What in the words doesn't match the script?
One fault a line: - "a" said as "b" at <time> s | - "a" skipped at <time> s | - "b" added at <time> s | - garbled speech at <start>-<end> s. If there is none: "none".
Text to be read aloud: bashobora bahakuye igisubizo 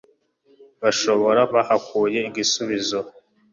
none